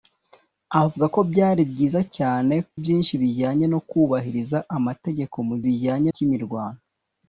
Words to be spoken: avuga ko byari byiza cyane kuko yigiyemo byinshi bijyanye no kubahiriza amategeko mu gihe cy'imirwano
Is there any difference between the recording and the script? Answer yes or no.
yes